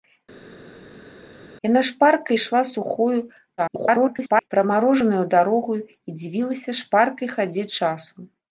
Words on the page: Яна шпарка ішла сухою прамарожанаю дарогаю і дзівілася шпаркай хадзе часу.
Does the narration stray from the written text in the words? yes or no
yes